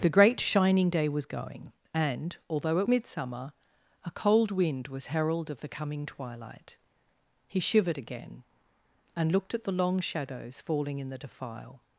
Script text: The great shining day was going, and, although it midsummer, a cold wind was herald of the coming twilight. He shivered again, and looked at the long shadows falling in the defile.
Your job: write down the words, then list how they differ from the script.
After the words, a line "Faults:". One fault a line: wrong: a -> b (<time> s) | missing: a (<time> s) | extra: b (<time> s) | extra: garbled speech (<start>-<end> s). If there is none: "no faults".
The great shining day was going, and, although it midsummer, a cold wind was herald of the coming twilight. He shivered again, and looked at the long shadows falling in the defile.
Faults:
no faults